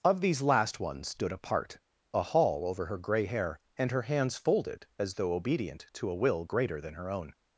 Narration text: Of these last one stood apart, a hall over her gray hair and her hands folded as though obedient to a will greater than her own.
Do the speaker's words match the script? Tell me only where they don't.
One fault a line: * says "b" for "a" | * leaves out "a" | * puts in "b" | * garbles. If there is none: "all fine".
all fine